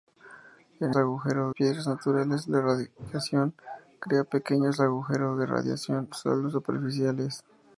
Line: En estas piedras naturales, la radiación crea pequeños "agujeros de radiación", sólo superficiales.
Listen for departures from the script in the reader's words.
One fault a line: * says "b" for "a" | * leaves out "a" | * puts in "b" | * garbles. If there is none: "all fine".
* says "agujeros" for "estas"